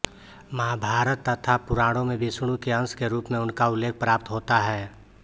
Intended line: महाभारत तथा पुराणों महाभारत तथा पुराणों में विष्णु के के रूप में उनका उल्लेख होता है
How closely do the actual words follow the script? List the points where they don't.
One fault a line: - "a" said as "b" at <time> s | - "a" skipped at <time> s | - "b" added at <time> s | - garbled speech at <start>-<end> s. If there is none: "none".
- "महाभारत तथा पुराणों" skipped at 2.0 s
- "अंश" added at 2.7 s
- "प्राप्त" added at 4.0 s